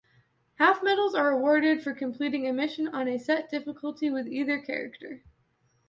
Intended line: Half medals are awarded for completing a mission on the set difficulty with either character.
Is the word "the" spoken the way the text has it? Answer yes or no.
no